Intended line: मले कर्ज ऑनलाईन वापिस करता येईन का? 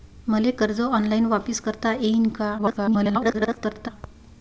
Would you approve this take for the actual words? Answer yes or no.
no